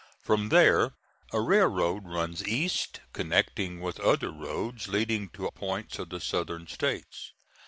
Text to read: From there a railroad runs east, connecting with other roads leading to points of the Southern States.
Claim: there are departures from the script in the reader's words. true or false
false